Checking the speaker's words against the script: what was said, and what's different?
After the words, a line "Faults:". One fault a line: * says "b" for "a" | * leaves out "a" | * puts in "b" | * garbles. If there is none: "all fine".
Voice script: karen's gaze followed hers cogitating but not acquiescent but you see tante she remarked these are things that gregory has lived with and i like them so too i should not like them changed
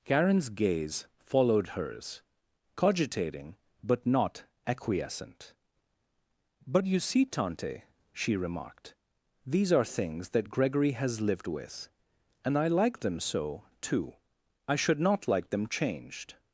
karen's gaze followed hers cogitating but not acquiescent but you see tante she remarked these are things that gregory has lived with and i like them so too i should not like them changed
Faults:
all fine